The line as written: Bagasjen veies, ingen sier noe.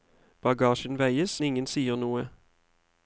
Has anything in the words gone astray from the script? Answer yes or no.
no